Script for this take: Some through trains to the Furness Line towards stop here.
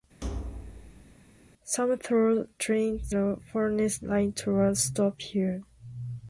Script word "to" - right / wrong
wrong